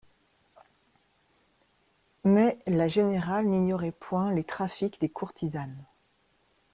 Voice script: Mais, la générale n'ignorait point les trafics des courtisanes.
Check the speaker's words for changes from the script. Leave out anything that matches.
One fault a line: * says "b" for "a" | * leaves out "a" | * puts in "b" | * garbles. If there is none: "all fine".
all fine